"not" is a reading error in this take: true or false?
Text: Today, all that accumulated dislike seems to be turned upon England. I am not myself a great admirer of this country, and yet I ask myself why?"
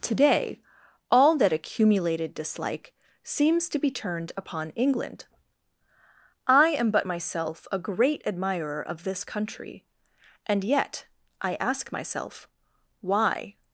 true